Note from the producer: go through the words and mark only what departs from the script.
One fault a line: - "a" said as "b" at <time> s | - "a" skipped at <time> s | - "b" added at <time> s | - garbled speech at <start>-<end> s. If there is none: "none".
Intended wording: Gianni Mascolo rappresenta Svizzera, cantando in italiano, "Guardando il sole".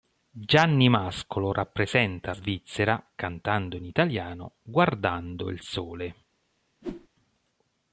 none